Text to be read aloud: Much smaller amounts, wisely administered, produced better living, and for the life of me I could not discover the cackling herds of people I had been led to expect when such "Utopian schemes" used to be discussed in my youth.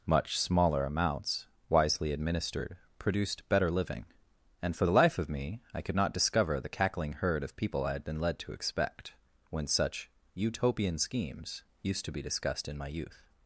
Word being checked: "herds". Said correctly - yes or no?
no